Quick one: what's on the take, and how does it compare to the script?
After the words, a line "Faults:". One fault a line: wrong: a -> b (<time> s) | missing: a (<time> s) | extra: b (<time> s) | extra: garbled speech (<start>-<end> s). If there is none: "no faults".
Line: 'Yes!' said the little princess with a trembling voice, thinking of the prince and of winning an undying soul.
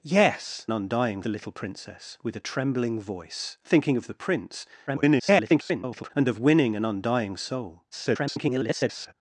'Yes!' undying the little princess with a trembling voice, thinking of the prince [garbled] and of winning an undying soul. [garbled]
Faults:
wrong: said -> undying (0.7 s)
extra: garbled speech (4.9-6.1 s)
extra: garbled speech (7.9-9.1 s)